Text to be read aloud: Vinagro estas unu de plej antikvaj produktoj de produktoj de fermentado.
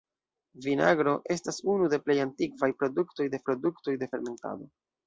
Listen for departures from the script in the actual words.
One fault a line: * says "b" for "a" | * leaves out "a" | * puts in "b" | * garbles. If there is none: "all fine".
all fine